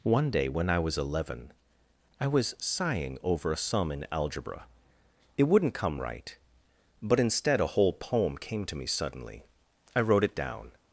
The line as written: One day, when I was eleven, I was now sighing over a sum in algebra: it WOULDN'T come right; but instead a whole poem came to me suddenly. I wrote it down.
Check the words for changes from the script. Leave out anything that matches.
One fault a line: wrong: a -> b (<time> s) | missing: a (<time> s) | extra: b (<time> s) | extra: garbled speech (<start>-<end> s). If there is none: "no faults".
missing: now (2.5 s)